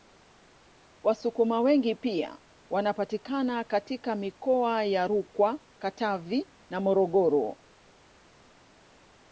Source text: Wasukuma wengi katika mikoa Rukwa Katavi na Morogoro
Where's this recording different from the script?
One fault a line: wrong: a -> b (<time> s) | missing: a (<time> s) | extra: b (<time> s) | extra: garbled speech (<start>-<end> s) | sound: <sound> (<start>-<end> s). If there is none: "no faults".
extra: pia wanapatikana (1.9 s)
extra: ya (4.8 s)